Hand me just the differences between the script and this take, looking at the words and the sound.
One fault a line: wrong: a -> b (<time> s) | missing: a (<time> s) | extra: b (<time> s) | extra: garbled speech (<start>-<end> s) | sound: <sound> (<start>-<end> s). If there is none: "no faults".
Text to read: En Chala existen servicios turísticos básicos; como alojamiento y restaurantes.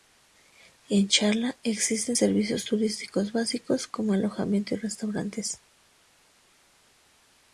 no faults